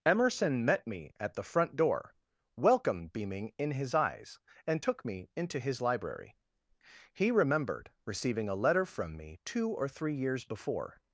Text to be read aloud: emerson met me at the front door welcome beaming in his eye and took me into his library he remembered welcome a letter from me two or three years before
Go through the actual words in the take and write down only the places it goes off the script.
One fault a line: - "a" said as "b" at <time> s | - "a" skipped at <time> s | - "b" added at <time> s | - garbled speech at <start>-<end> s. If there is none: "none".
- "eye" said as "eyes" at 3.9 s
- "welcome" said as "receiving" at 8.1 s